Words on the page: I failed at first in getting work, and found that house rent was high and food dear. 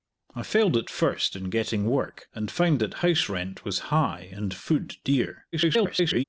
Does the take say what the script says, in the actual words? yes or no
no